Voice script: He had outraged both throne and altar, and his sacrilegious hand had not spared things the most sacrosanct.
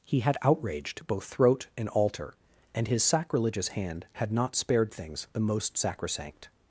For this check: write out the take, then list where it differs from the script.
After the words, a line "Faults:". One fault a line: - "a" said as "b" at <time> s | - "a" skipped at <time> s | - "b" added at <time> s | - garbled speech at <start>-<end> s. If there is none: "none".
He had outraged both throat and altar, and his sacrilegious hand had not spared things the most sacrosanct.
Faults:
- "throne" said as "throat" at 1.2 s